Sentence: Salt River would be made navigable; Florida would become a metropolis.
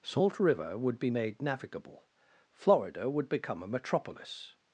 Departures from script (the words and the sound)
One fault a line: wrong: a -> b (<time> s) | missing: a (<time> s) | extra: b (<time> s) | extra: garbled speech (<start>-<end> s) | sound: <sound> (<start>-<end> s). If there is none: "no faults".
no faults